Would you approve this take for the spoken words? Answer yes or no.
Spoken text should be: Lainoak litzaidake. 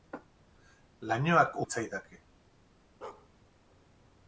yes